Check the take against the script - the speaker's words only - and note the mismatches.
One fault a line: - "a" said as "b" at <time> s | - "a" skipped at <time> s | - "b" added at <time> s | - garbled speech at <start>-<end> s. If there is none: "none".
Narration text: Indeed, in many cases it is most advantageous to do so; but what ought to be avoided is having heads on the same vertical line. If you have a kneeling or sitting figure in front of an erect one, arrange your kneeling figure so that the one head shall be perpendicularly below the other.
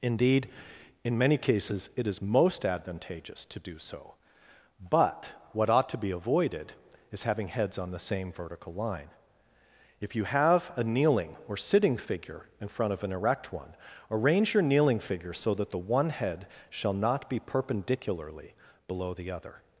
- "not" added at 16.9 s